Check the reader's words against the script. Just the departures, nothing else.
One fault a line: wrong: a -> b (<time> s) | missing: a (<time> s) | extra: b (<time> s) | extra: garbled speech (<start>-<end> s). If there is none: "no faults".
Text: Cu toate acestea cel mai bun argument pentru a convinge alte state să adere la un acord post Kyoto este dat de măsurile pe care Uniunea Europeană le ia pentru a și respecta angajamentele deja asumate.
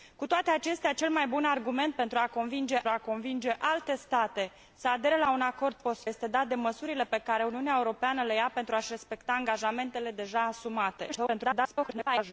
extra: a convinge (2.9 s)
missing: Kyoto (6.0 s)
extra: garbled speech (11.1-12.3 s)